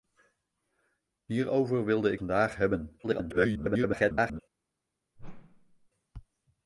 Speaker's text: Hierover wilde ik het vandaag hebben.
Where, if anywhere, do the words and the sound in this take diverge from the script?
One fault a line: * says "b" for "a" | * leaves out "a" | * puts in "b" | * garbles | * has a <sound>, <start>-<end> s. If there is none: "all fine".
* leaves out "het"
* garbles
* has a whoosh, 5.2-5.9 s